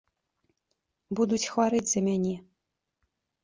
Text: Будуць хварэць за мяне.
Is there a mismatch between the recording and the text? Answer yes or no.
no